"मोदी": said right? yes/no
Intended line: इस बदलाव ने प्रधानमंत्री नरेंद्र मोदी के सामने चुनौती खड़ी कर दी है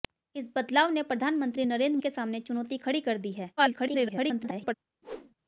no